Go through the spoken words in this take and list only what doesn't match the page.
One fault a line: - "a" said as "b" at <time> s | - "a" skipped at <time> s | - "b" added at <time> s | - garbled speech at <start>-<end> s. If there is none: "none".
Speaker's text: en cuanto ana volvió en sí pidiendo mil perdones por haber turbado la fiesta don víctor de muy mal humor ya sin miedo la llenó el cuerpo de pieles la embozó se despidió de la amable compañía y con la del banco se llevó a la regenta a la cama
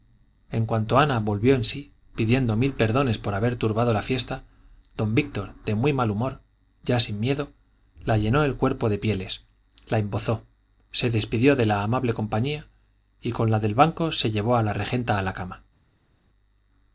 none